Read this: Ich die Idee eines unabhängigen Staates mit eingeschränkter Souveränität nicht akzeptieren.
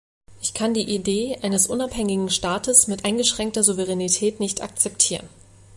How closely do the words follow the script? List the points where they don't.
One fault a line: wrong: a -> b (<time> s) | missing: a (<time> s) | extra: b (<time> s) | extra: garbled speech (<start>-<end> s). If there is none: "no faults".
extra: kann (0.6 s)